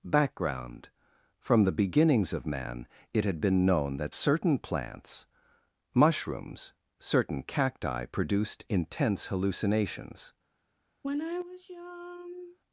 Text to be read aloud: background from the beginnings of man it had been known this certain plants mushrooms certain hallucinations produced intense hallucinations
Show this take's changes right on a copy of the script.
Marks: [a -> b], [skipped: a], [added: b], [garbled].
background from the beginnings of man it had been known [this -> that] certain plants mushrooms certain [hallucinations -> cacti] produced intense hallucinations